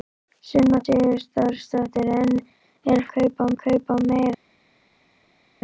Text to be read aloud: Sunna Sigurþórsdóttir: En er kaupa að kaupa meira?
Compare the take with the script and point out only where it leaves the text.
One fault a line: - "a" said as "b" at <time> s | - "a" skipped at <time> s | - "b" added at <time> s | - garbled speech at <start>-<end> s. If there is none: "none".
none